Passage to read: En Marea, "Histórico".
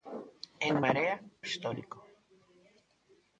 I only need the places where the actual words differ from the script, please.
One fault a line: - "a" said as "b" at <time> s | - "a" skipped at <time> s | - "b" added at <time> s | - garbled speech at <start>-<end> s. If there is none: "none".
none